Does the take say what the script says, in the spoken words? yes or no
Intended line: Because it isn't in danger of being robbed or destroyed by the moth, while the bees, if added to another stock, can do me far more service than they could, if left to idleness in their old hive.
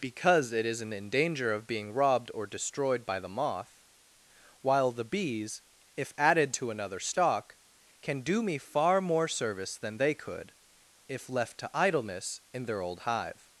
yes